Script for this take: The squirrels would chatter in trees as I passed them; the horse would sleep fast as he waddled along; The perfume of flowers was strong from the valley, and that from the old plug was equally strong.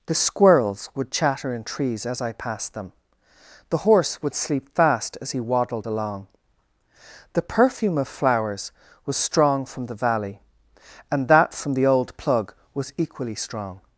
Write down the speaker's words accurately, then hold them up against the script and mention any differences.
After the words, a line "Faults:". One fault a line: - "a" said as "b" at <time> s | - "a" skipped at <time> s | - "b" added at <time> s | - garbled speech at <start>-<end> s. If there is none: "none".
The squirrels would chatter in trees as I passed them; the horse would sleep fast as he waddled along; The perfume of flowers was strong from the valley, and that from the old plug was equally strong.
Faults:
none